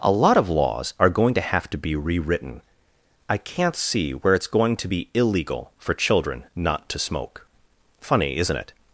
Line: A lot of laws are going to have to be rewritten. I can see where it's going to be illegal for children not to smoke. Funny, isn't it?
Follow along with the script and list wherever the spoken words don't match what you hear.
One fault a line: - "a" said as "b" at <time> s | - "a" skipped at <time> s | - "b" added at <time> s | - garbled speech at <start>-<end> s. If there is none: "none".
- "can" said as "can't" at 3.4 s